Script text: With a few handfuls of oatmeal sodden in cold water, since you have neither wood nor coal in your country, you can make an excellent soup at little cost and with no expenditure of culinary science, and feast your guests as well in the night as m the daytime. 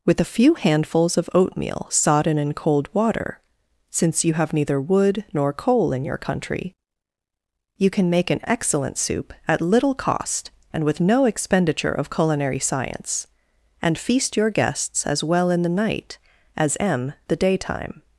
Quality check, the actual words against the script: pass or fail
pass